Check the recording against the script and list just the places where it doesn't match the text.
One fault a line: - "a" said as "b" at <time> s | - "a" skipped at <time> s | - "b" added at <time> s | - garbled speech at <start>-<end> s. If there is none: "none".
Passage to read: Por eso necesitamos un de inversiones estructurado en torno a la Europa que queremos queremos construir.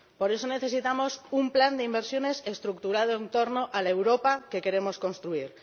- "plan" added at 1.5 s
- "queremos" skipped at 5.0 s